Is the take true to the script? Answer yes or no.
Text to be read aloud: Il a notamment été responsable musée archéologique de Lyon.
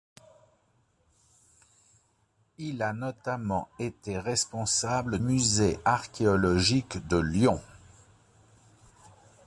yes